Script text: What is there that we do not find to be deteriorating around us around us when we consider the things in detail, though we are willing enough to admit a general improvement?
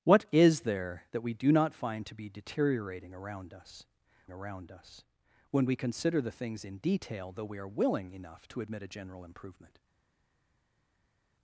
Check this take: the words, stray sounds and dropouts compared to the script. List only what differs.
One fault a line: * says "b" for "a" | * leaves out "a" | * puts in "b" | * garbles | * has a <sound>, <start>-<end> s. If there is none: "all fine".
all fine